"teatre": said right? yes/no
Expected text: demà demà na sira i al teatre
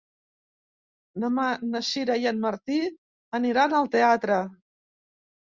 yes